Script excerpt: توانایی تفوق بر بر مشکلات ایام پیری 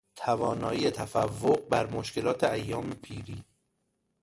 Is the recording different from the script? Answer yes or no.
yes